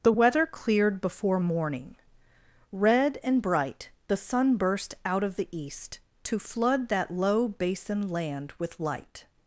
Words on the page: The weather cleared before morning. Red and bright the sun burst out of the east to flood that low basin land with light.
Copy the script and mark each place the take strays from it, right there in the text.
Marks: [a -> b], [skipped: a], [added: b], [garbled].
The weather cleared before morning. Red and bright the sun burst out of the east to flood that low basin land with light.